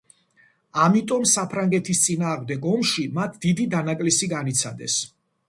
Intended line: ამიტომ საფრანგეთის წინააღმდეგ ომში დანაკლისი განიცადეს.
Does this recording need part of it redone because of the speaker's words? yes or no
yes